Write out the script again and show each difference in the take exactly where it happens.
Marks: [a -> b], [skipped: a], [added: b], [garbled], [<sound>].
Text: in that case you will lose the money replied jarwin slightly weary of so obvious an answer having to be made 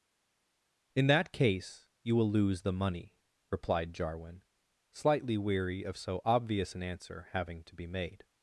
in that case you will lose the money replied jarwin slightly weary of so obvious an answer having to be made